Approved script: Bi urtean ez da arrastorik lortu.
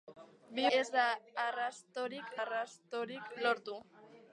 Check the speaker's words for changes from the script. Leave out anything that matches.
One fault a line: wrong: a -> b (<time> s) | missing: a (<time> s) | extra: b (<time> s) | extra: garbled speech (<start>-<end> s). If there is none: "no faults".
missing: urtean (0.6 s)
extra: arrastorik (2.4 s)